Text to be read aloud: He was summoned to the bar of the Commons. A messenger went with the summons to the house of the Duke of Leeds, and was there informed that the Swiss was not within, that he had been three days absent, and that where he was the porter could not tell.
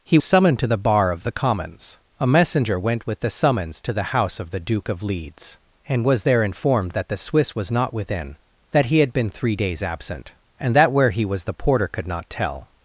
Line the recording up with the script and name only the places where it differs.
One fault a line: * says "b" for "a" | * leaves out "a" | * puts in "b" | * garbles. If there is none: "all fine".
* leaves out "was"